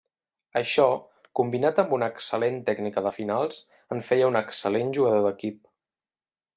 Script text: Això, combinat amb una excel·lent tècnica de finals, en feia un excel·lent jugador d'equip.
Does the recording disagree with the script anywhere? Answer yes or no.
no